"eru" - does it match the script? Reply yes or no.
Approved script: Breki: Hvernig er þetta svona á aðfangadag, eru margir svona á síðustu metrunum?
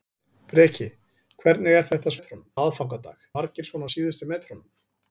no